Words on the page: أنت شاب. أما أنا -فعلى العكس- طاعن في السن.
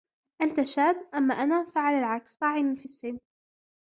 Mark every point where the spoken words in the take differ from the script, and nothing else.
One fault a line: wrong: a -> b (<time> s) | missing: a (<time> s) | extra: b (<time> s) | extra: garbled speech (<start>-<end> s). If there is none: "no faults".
no faults